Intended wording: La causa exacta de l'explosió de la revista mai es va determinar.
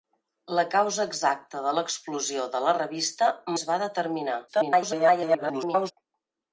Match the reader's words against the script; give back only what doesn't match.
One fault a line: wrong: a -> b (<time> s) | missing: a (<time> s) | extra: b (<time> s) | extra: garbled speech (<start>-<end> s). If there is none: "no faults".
missing: mai (3.3 s)
extra: garbled speech (4.5-5.9 s)